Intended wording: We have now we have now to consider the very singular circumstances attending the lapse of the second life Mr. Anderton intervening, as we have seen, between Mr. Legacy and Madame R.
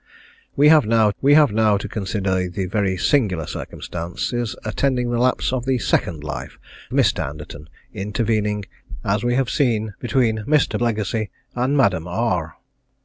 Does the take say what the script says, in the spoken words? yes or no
yes